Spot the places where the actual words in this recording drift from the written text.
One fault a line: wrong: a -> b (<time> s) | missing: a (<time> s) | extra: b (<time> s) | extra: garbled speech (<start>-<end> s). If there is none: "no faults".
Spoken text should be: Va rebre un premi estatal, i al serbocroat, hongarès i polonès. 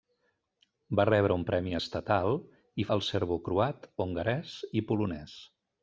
no faults